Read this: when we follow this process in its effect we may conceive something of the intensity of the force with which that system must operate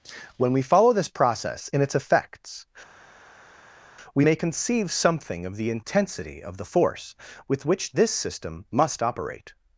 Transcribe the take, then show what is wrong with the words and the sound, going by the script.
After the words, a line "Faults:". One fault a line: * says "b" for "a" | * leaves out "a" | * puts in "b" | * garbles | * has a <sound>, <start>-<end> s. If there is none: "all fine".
when we follow this process in its effects we may conceive something of the intensity of the force with which this system must operate
Faults:
* says "effects" for "effect"
* says "this" for "that"